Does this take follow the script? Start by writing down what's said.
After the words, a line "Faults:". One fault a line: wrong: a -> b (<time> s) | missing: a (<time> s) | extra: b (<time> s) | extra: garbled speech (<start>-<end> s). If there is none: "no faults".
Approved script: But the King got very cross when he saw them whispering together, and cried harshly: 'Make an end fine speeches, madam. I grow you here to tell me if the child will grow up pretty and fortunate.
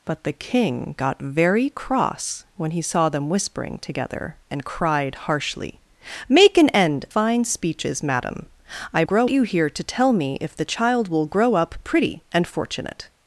But the King got very cross when he saw them whispering together, and cried harshly: 'Make an end fine speeches, madam. I grow you here to tell me if the child will grow up pretty and fortunate.
Faults:
no faults